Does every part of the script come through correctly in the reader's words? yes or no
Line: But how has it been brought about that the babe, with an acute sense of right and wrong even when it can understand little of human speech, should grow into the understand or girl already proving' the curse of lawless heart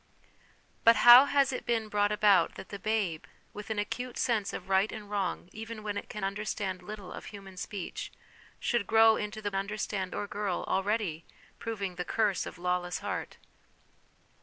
yes